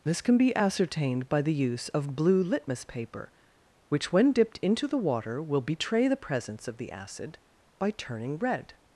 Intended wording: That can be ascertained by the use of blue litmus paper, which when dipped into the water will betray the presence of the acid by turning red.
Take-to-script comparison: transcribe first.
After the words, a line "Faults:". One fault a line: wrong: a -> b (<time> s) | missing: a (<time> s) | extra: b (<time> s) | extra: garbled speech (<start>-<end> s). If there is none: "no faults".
This can be ascertained by the use of blue litmus paper, which when dipped into the water will betray the presence of the acid by turning red.
Faults:
wrong: That -> This (0.0 s)